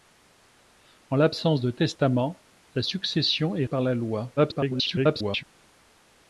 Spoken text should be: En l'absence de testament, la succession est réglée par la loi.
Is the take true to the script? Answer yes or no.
no